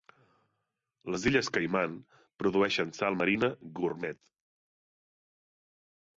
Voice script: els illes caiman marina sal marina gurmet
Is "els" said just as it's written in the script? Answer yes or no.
no